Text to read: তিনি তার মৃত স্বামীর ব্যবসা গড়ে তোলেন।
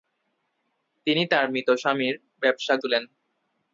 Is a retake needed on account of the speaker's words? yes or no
yes